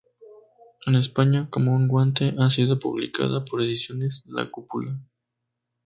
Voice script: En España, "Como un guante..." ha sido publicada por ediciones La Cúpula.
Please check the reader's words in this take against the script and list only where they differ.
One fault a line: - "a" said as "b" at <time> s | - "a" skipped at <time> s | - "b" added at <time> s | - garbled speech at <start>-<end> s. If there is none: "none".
none